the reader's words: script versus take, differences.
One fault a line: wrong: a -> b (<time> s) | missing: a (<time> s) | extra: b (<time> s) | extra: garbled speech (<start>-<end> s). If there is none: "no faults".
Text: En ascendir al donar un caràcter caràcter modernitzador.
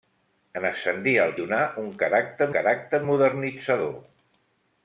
no faults